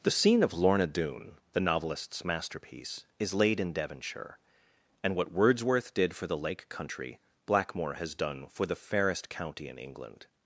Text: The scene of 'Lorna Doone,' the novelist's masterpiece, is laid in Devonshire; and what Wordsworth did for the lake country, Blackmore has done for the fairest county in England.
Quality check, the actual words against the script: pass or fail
pass